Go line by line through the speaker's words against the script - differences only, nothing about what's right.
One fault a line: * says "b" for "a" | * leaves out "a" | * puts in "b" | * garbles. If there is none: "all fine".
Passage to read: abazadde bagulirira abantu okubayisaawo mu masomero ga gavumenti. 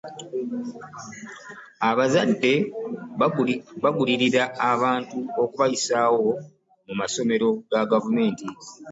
all fine